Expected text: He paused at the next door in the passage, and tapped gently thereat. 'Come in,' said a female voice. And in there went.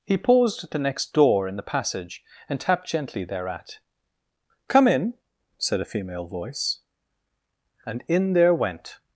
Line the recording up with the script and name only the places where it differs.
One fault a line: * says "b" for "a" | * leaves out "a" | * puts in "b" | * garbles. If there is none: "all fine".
all fine